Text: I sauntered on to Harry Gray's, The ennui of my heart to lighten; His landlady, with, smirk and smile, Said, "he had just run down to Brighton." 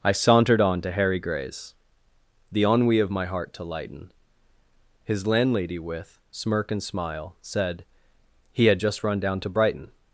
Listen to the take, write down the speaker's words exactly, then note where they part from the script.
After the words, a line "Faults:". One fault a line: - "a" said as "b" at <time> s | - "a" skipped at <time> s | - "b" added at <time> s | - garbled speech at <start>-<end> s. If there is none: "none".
I sauntered on to Harry Gray's, The ennui of my heart to lighten; His landlady, with, smirk and smile, Said, "he had just run down to Brighton."
Faults:
none